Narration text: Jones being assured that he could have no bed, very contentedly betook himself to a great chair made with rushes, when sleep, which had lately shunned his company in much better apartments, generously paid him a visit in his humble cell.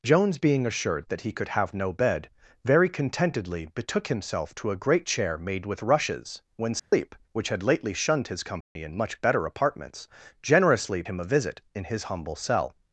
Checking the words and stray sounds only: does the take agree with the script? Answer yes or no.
no